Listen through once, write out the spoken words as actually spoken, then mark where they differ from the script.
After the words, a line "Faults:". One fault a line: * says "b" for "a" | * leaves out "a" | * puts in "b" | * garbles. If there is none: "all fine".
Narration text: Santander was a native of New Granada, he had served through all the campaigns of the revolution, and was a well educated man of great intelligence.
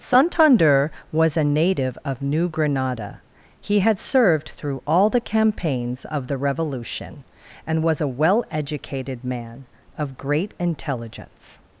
Santander was a native of New Granada, he had served through all the campaigns of the revolution, and was a well educated man of great intelligence.
Faults:
all fine